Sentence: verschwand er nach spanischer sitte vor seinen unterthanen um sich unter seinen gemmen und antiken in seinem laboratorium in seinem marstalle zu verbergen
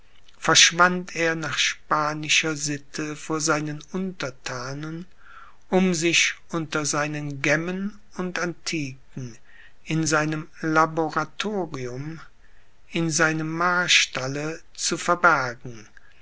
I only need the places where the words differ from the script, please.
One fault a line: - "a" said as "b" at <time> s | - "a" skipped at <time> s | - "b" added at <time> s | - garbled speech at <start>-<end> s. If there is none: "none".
none